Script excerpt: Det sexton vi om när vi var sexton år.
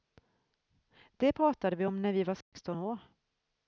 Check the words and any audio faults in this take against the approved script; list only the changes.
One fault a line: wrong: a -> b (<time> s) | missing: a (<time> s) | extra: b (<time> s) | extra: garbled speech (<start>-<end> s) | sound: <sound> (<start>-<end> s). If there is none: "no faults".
wrong: sexton -> pratade (1.3 s)
sound: dropout (2.4-2.5 s)